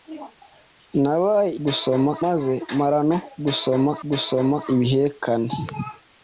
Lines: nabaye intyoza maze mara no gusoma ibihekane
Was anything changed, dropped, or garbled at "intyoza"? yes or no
yes